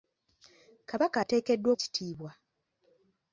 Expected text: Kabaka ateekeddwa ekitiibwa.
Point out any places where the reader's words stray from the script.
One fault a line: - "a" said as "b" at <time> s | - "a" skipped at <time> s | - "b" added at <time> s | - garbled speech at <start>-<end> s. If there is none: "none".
none